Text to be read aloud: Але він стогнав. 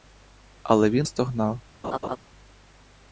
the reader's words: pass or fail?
pass